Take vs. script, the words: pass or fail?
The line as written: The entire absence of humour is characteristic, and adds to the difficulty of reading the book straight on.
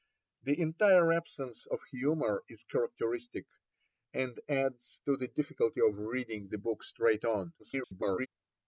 fail